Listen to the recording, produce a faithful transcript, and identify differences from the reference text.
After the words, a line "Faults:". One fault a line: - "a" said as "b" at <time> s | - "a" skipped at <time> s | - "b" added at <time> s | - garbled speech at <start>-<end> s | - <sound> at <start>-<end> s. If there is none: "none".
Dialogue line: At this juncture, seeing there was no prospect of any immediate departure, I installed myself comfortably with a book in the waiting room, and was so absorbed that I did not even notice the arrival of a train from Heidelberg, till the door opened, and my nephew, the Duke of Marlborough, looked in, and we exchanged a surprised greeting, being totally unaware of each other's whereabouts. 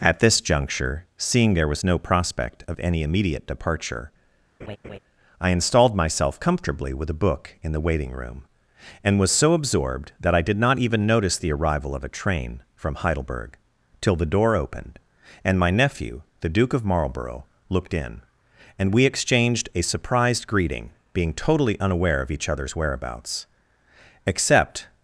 At this juncture, seeing there was no prospect of any immediate departure, I installed myself comfortably with a book in the waiting room, and was so absorbed that I did not even notice the arrival of a train from Heidelberg, till the door opened, and my nephew, the Duke of Marlborough, looked in, and we exchanged a surprised greeting, being totally unaware of each other's whereabouts. Except
Faults:
- laugh at 4.6-5.0 s
- "Except" added at 24.3 s